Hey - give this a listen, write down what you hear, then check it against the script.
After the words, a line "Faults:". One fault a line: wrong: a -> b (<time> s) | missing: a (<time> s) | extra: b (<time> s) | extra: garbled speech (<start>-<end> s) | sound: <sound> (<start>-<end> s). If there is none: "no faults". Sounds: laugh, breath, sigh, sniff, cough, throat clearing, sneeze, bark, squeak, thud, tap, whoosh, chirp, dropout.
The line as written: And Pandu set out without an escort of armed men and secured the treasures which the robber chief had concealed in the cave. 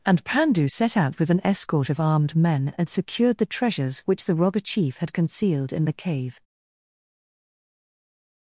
And Pandu set out with an escort of armed men and secured the treasures which the robber chief had concealed in the cave.
Faults:
wrong: without -> with (1.2 s)